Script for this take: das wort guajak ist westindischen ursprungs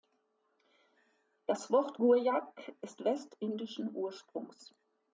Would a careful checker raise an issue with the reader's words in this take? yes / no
no